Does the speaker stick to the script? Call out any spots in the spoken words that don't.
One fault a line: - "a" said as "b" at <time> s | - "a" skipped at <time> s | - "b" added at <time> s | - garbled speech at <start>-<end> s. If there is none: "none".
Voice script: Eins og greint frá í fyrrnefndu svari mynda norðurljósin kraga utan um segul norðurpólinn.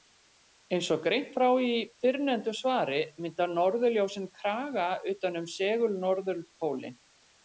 none